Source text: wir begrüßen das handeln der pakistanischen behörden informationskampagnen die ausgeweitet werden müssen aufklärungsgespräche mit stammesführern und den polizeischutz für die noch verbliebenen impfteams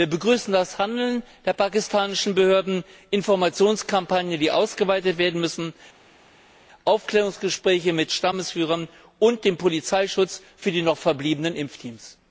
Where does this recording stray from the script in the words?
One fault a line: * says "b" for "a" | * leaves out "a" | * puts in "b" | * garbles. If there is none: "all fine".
all fine